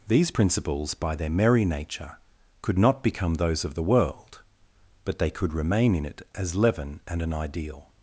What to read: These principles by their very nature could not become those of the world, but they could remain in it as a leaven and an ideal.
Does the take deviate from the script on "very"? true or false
true